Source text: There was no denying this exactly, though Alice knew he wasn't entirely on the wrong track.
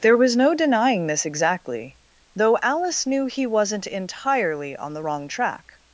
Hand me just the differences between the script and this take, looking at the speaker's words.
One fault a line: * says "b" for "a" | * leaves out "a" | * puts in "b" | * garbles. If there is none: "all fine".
all fine